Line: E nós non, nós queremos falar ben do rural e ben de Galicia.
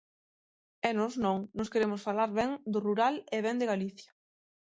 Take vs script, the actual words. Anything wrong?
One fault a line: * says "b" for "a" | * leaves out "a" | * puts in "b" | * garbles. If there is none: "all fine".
all fine